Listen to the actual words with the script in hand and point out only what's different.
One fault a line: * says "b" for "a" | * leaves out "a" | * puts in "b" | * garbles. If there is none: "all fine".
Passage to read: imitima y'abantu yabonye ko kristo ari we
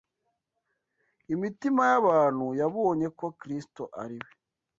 all fine